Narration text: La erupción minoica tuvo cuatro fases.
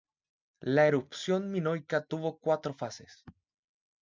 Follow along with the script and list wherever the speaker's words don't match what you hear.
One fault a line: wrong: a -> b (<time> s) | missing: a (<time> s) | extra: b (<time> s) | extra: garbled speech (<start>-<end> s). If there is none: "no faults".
no faults